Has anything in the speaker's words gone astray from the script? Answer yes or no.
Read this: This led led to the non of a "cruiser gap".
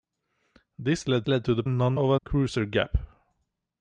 no